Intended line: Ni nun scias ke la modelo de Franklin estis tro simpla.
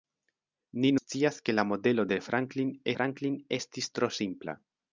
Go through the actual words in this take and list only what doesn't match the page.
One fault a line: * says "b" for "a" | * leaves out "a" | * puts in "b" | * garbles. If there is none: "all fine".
* leaves out "nun"
* puts in "Franklin"